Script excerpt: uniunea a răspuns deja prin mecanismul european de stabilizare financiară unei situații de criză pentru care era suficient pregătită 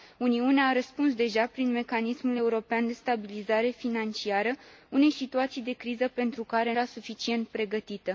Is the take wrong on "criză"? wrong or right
right